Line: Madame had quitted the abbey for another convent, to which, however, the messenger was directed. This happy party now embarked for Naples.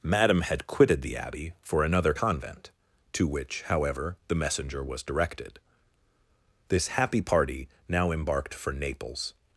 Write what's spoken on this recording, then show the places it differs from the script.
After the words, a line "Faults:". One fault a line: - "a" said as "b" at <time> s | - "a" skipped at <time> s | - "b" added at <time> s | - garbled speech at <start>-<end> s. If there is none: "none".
Madame had quitted the abbey for another convent, to which, however, the messenger was directed. This happy party now embarked for Naples.
Faults:
none